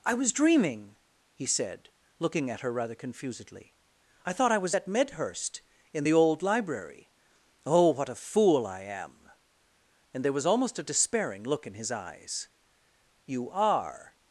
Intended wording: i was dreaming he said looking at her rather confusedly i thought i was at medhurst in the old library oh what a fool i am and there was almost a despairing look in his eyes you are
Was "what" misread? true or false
false